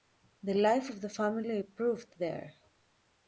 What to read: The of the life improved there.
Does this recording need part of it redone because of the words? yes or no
yes